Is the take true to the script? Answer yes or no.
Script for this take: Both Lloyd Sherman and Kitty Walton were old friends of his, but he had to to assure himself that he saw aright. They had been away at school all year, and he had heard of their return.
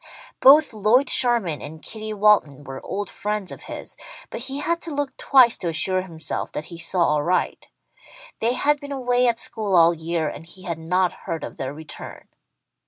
no